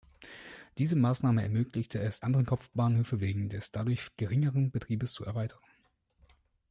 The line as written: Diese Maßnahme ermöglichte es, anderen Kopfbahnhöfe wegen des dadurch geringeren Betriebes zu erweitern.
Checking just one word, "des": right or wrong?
right